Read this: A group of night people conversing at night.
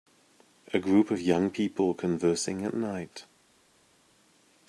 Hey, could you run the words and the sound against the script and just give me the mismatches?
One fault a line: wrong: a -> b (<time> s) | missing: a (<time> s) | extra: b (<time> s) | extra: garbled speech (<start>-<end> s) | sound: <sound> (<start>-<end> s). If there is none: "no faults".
wrong: night -> young (1.2 s)